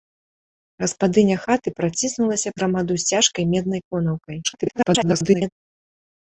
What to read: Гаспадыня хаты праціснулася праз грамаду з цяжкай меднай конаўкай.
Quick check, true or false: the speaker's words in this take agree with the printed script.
false